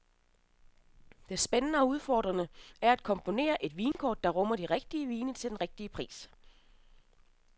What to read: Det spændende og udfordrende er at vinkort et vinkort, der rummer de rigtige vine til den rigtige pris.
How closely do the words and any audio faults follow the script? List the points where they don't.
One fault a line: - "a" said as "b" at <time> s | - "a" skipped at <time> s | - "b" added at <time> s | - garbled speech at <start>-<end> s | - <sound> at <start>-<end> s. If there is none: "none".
- "vinkort" said as "komponere" at 3.0 s
- dropout at 3.9-3.9 s